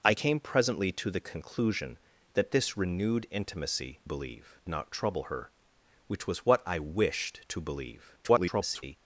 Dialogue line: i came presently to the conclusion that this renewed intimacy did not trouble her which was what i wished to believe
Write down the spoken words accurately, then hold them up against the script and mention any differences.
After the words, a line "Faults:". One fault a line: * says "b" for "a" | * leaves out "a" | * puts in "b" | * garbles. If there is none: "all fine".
i came presently to the conclusion that this renewed intimacy believe not trouble her which was what i wished to believe [garbled]
Faults:
* says "believe" for "did"
* garbles